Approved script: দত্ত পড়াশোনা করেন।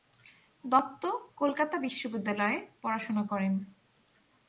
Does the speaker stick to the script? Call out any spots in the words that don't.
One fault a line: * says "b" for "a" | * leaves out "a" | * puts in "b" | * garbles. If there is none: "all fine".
* puts in "কলকাতা বিশ্ববিদ্যালয়ে"